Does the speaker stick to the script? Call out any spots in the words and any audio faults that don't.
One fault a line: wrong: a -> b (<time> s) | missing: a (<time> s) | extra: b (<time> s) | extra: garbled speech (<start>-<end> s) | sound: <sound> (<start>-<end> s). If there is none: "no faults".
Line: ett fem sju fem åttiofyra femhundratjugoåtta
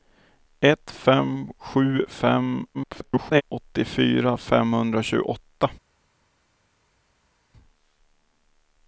extra: garbled speech (2.7-3.4 s)